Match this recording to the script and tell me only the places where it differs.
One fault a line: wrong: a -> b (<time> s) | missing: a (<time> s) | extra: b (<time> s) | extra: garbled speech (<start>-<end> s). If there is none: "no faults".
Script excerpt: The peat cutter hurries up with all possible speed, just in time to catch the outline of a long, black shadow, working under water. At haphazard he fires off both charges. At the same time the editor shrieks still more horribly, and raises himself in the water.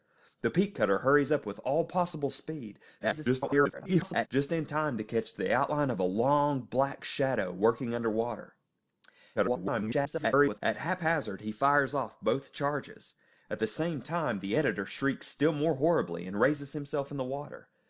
extra: garbled speech (3.0-4.3 s)
extra: garbled speech (9.3-10.6 s)